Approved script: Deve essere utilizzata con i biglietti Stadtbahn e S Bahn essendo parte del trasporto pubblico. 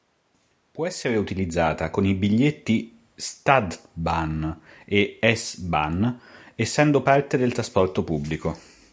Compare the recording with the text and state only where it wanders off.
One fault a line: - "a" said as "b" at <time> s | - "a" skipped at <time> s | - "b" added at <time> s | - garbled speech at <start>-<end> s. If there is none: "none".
- "Deve" said as "Può" at 0.7 s